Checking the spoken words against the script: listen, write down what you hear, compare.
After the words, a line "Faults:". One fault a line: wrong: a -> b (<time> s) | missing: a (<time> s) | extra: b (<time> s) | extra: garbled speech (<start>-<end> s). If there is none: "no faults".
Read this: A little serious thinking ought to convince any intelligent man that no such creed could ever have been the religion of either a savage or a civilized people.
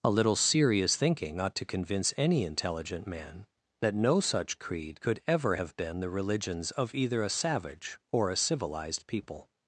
A little serious thinking ought to convince any intelligent man that no such creed could ever have been the religions of either a savage or a civilized people.
Faults:
wrong: religion -> religions (6.1 s)